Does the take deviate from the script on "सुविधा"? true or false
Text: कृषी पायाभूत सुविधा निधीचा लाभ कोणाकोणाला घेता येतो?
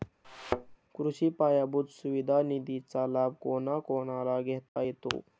false